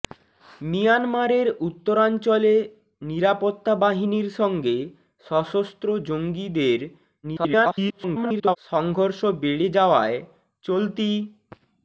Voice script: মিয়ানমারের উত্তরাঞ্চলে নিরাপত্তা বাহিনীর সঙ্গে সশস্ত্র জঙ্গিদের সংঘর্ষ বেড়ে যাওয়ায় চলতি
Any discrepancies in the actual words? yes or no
yes